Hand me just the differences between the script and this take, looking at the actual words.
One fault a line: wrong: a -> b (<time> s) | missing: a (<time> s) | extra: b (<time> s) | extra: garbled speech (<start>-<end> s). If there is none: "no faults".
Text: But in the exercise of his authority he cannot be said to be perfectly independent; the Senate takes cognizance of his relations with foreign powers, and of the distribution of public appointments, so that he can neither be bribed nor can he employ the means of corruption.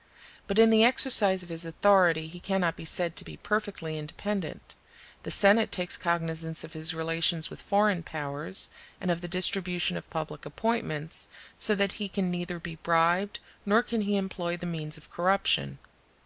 no faults